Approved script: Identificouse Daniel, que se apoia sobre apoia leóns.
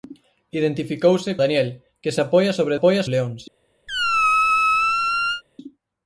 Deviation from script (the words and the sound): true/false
true